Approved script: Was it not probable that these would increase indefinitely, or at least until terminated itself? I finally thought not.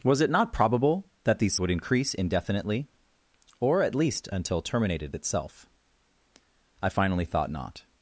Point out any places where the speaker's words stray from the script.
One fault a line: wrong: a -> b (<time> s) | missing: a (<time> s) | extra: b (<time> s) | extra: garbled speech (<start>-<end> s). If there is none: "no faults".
no faults